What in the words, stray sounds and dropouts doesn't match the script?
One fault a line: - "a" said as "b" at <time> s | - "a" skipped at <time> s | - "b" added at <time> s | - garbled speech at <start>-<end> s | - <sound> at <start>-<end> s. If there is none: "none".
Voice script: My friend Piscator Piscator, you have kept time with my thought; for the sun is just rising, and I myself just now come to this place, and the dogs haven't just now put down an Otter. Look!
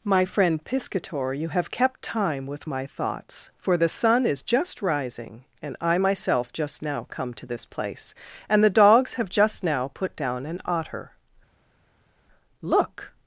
- "Piscator" skipped at 1.3 s
- "thought" said as "thoughts" at 2.8 s
- "haven't" said as "have" at 9.1 s